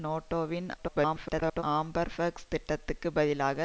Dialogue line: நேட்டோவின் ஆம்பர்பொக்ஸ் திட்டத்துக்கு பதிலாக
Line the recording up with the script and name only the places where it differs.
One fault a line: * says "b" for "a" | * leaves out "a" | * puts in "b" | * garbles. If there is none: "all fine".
* garbles